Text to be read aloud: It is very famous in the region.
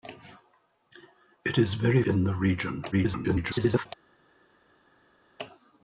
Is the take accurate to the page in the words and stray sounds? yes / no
no